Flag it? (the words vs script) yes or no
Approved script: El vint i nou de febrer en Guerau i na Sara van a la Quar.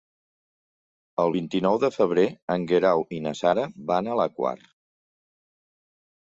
no